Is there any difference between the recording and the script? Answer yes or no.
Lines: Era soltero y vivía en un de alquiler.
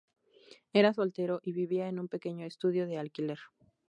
yes